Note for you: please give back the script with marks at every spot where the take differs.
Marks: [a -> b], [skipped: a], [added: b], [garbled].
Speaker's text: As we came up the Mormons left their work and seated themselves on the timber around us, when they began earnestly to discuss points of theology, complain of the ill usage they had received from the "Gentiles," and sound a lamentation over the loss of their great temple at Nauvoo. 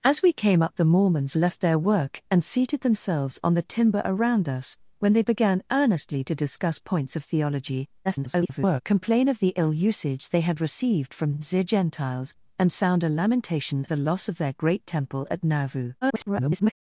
As we came up the Mormons left their work and seated themselves on the timber around us, when they began earnestly to discuss points of theology, [garbled] complain of the ill usage they had received from the "Gentiles," and sound a lamentation [skipped: over] the loss of their great temple at Nauvoo. [garbled]